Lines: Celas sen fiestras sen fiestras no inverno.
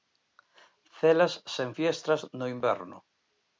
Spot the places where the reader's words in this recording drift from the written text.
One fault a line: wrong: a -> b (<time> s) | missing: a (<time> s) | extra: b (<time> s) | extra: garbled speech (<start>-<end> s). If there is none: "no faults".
missing: sen fiestras (2.2 s)